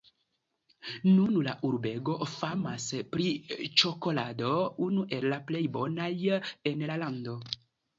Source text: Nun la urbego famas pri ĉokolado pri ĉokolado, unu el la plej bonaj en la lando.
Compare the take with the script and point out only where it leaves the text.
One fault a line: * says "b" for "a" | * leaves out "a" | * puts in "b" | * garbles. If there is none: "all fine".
* leaves out "pri ĉokolado"